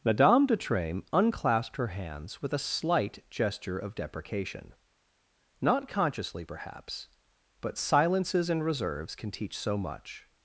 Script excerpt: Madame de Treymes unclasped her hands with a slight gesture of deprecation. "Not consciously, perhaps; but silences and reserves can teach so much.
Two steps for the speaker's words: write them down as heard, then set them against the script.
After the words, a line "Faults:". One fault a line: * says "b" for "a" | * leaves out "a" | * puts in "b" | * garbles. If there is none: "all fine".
Madame de Treymes unclasped her hands with a slight gesture of deprecation. "Not consciously, perhaps; but silences and reserves can teach so much.
Faults:
all fine